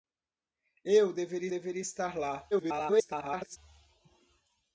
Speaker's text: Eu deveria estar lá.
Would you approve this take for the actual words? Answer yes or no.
no